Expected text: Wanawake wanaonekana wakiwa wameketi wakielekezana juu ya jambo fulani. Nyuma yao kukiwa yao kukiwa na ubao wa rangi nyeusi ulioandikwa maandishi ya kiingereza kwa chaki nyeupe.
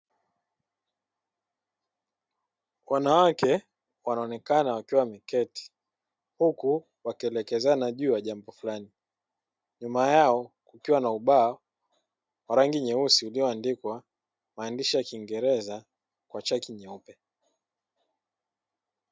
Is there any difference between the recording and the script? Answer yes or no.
yes